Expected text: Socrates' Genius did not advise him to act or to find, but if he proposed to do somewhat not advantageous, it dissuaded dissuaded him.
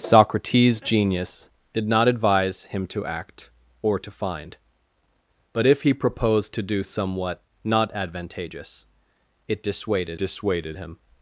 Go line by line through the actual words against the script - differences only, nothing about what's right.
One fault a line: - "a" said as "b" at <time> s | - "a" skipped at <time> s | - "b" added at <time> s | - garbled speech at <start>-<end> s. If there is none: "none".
none